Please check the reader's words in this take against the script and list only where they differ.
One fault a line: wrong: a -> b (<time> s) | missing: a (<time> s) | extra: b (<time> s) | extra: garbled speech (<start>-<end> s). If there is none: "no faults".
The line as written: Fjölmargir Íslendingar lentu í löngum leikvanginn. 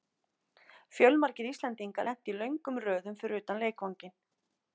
extra: röðum fyrir utan (2.9 s)